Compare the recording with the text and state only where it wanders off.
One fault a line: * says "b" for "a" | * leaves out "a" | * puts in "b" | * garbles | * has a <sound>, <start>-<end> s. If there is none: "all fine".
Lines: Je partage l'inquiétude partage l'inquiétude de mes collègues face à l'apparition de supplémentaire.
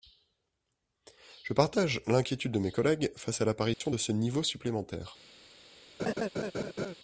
* leaves out "partage l'inquiétude"
* has a dropout, 3.7-3.8 s
* puts in "ce niveau"
* has a laugh, 6.0-7.0 s